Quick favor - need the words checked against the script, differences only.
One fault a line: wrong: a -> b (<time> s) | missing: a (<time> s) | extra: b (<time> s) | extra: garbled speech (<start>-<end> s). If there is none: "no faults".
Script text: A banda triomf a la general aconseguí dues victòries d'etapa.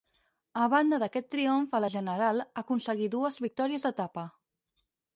extra: d'aquest (1.0 s)